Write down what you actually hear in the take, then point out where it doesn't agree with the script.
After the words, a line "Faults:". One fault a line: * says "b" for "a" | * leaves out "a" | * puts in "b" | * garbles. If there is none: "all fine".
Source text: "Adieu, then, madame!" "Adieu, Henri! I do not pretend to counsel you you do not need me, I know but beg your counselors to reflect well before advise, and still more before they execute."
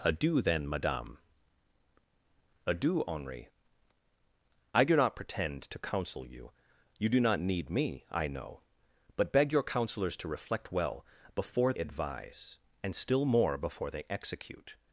"Adieu, then, madame!" "Adieu, Henri! I do not pretend to counsel you you do not need me, I know but beg your counselors to reflect well before advise, and still more before they execute."
Faults:
all fine